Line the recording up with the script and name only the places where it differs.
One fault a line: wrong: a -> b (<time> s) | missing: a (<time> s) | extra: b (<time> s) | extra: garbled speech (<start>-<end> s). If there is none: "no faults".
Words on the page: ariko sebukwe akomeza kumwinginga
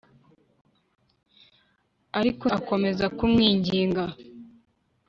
missing: sebukwe (2.5 s)